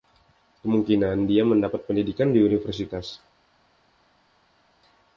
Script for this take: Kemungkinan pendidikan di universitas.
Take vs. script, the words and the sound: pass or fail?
fail